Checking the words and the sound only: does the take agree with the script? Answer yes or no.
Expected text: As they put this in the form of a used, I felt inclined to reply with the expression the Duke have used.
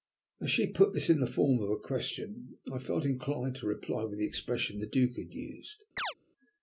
no